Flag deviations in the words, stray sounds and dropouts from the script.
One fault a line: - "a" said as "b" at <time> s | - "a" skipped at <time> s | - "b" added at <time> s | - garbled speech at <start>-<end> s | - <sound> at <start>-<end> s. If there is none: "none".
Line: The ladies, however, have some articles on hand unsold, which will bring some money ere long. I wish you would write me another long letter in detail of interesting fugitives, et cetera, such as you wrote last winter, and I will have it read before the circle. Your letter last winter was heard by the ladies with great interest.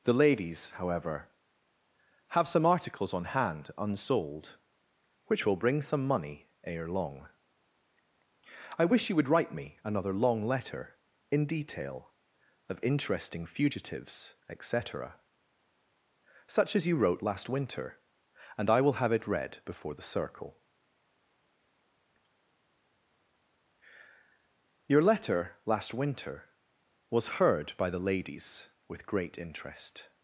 none